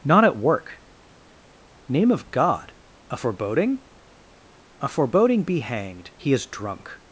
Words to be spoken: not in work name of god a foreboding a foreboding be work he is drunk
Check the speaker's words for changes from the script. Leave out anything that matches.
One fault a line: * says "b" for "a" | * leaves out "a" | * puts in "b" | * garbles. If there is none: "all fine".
* says "at" for "in"
* says "hanged" for "work"